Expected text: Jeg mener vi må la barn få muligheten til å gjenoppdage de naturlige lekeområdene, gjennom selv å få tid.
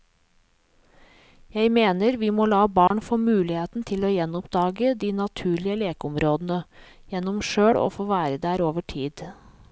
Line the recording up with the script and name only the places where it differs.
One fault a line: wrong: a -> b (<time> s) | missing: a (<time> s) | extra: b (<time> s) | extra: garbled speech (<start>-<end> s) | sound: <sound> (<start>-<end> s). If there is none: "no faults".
sound: dropout (2.9-2.9 s)
extra: være der over (8.1 s)